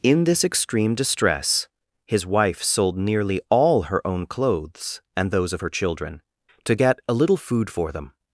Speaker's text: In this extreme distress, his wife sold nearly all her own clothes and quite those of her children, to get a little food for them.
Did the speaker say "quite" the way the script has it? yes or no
no